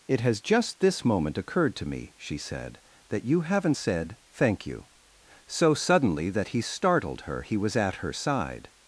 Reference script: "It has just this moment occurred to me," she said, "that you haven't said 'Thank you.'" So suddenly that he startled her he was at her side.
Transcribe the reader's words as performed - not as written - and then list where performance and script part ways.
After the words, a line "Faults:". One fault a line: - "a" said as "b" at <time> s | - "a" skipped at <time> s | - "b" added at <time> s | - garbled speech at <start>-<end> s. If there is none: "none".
"It has just this moment occurred to me," she said, "that you haven't said 'Thank you.'" So suddenly that he startled her he was at her side.
Faults:
none